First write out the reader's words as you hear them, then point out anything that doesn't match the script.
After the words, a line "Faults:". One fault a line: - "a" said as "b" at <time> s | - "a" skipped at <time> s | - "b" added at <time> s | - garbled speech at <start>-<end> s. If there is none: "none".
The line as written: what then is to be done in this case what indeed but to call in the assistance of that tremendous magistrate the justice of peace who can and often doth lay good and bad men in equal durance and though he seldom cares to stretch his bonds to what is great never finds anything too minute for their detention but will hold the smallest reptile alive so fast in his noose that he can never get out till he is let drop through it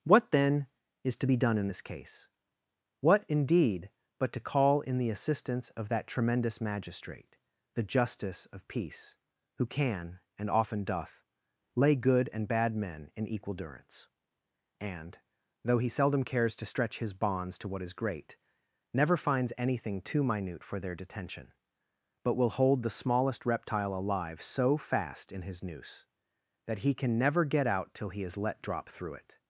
what then is to be done in this case what indeed but to call in the assistance of that tremendous magistrate the justice of peace who can and often doth lay good and bad men in equal durance and though he seldom cares to stretch his bonds to what is great never finds anything too minute for their detention but will hold the smallest reptile alive so fast in his noose that he can never get out till he is let drop through it
Faults:
none